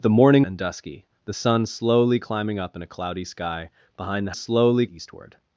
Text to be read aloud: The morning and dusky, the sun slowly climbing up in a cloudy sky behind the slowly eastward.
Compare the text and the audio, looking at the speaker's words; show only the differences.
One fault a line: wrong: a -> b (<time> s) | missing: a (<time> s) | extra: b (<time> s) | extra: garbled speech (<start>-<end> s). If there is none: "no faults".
no faults